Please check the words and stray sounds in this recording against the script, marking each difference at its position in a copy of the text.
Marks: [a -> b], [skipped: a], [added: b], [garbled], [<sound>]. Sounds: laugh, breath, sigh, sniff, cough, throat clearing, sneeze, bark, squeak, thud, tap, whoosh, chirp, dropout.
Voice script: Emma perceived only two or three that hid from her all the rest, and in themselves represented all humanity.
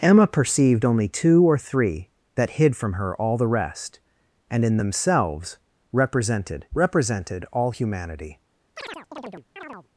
Emma perceived only two or three that hid from her all the rest, and in themselves represented [added: represented] all humanity. [chirp]